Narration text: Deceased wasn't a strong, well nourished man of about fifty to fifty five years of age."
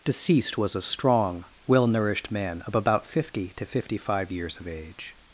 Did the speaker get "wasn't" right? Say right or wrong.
wrong